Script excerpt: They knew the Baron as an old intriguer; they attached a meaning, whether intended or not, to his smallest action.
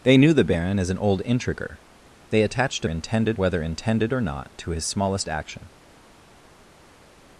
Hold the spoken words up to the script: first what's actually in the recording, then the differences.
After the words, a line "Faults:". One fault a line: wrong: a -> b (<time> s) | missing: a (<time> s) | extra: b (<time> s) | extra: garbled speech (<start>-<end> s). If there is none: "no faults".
They knew the Baron as an old intriguer; they attached a intended, whether intended or not, to his smallest action.
Faults:
wrong: meaning -> intended (2.9 s)